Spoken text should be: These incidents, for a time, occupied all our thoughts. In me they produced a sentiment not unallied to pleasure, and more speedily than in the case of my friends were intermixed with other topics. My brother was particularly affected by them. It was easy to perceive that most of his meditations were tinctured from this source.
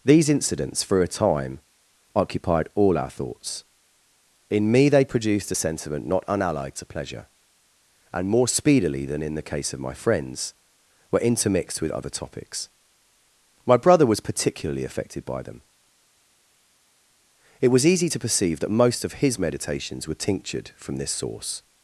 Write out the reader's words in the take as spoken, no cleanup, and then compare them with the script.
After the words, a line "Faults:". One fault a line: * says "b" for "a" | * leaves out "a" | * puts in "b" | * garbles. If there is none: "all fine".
These incidents, for a time, occupied all our thoughts. In me they produced a sentiment not unallied to pleasure, and more speedily than in the case of my friends were intermixed with other topics. My brother was particularly affected by them. It was easy to perceive that most of his meditations were tinctured from this source.
Faults:
all fine